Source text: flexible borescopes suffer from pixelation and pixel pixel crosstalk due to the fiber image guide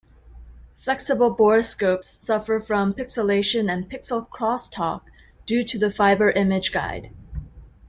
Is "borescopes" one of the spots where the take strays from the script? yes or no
no